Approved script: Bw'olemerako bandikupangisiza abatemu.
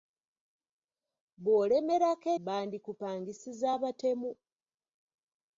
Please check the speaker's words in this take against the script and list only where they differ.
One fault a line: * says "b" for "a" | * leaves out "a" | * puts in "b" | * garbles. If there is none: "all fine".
all fine